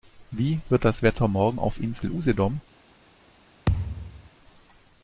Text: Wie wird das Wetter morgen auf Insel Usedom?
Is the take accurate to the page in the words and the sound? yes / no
no